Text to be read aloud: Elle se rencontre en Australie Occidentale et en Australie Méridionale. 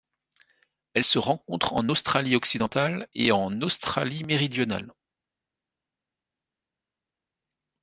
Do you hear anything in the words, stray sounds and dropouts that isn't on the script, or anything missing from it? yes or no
no